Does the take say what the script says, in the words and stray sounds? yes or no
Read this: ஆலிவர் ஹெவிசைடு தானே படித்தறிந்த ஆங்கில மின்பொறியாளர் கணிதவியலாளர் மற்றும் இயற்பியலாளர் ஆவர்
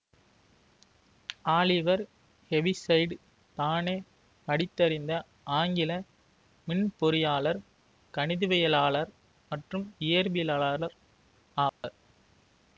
no